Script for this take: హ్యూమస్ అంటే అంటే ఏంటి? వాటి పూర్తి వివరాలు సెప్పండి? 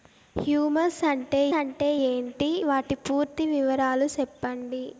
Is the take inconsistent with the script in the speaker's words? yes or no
no